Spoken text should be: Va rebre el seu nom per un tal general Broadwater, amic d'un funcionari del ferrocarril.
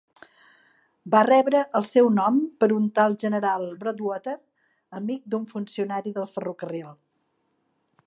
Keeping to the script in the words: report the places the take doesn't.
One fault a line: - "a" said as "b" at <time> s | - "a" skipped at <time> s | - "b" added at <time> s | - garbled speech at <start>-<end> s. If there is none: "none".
none